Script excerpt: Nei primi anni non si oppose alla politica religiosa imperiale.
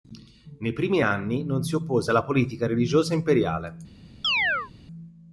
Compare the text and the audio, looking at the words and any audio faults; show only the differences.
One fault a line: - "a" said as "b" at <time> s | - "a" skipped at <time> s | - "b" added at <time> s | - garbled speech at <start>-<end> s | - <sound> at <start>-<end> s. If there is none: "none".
- chirp at 4.2-4.7 s